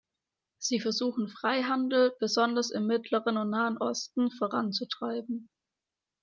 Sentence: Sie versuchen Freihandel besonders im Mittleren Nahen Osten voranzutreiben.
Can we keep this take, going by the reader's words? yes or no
no